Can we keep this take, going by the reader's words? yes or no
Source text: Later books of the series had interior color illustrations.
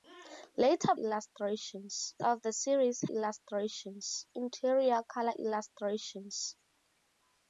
no